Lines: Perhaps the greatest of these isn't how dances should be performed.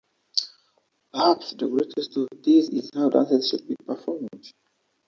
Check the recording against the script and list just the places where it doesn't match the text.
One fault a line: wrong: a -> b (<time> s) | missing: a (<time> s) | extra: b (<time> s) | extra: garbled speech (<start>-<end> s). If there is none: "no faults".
wrong: isn't -> is (2.7 s)